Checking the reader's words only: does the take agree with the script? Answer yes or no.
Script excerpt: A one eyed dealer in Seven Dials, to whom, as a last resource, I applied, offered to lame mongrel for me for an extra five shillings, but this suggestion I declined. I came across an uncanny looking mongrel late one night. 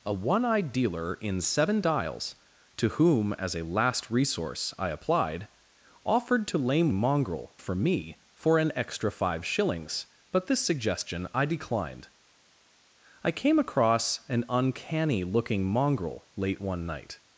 yes